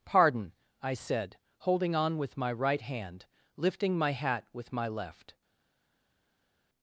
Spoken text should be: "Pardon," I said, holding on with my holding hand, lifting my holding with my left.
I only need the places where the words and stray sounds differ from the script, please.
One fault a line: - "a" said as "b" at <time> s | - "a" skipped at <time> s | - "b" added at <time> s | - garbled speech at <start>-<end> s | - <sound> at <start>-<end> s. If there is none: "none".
- "holding" said as "right" at 2.5 s
- "holding" said as "hat" at 4.1 s